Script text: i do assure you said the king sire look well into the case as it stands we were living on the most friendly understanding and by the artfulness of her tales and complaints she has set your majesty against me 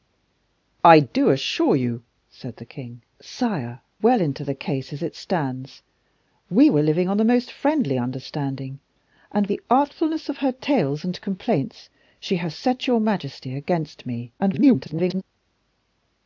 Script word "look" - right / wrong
wrong